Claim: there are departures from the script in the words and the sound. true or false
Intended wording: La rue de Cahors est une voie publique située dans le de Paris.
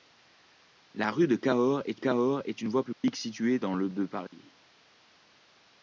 true